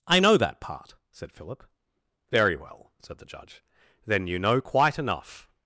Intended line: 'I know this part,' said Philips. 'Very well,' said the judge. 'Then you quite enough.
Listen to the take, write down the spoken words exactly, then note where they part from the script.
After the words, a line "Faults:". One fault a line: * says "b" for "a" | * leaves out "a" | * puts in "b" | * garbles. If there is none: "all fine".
'I know that part,' said Philip. 'Very well,' said the judge. 'Then you know quite enough.
Faults:
* says "that" for "this"
* says "Philip" for "Philips"
* puts in "know"